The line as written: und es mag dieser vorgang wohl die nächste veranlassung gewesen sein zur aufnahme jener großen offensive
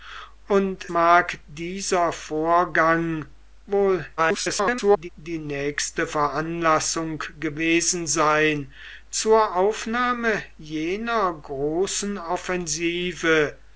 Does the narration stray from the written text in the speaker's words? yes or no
yes